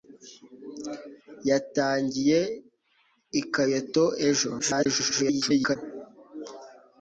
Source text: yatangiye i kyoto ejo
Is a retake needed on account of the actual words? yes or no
yes